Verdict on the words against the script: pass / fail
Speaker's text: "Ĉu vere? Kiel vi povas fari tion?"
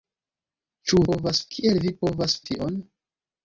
fail